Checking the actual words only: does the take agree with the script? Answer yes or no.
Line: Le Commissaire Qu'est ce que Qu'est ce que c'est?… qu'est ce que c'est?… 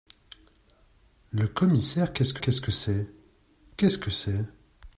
yes